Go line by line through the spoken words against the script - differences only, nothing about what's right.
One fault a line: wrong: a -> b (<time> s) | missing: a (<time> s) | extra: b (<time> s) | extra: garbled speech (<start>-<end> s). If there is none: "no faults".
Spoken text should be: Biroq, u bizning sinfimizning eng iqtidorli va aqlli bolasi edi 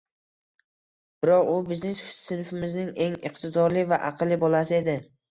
no faults